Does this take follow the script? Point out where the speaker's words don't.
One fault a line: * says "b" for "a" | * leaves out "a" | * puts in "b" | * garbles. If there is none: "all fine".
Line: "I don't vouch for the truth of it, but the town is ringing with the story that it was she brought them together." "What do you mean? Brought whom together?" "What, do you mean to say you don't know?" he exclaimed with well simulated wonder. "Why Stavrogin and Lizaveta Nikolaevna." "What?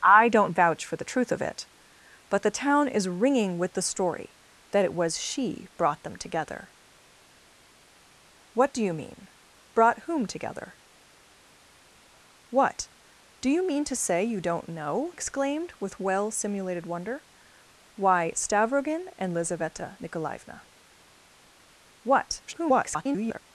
* leaves out "he"
* garbles